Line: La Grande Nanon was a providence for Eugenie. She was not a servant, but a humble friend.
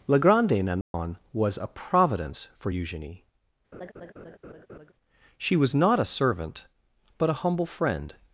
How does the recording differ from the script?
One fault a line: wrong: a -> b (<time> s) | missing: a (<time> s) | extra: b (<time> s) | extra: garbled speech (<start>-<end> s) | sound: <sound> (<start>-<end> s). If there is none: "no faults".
sound: dropout (0.8-0.9 s)
sound: laugh (3.7-4.9 s)